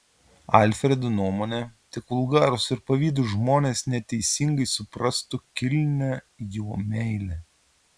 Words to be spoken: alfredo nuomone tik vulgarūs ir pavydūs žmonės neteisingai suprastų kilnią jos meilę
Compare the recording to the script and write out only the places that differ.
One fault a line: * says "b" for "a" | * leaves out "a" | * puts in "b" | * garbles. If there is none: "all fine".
* says "jo" for "jos"